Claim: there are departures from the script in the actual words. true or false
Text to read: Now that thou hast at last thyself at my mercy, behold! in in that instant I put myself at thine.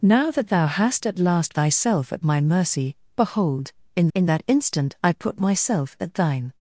false